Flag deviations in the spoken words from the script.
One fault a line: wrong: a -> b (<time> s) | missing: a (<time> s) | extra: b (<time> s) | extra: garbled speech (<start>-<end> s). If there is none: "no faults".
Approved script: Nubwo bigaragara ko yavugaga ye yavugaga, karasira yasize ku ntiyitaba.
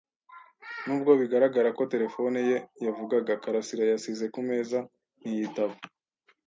wrong: yavugaga -> terefone (1.9 s)
extra: meza (4.5 s)